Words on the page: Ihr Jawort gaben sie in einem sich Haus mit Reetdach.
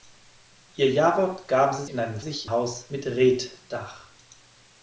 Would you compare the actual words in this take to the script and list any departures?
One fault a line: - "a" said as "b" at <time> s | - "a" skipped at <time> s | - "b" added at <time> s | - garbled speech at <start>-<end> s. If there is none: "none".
none